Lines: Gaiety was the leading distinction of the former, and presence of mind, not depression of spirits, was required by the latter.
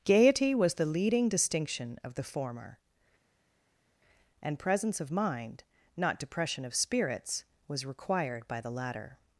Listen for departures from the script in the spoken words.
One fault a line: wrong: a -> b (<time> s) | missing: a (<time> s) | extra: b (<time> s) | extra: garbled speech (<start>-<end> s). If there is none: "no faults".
no faults